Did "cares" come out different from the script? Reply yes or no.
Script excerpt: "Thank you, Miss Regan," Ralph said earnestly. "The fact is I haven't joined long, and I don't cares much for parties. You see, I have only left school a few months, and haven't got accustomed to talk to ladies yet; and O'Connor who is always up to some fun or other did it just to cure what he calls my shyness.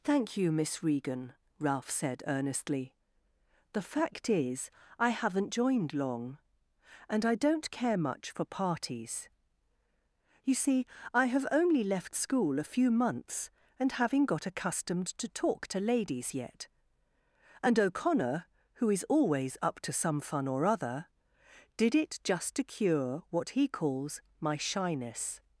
yes